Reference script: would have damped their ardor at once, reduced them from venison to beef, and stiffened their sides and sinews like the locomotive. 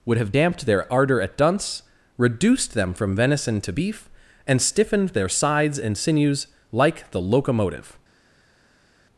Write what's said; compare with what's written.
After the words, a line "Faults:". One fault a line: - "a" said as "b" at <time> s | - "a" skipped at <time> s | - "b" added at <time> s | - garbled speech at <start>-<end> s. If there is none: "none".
would have damped their ardor at dunce, reduced them from venison to beef, and stiffened their sides and sinews like the locomotive.
Faults:
- "once" said as "dunce" at 1.4 s